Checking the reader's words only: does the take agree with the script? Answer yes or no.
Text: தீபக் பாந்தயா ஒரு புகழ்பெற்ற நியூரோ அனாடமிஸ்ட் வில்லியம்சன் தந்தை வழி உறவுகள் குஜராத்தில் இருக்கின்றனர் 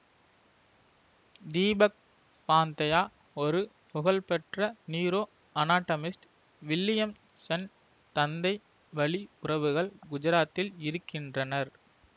yes